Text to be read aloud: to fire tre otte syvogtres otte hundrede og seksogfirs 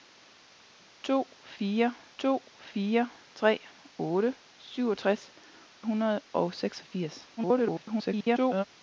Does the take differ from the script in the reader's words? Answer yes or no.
yes